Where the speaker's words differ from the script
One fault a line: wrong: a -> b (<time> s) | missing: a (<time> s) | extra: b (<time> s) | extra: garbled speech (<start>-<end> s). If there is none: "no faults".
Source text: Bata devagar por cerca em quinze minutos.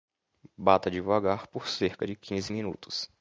wrong: em -> de (2.0 s)